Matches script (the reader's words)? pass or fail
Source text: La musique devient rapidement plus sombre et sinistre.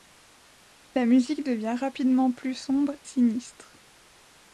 fail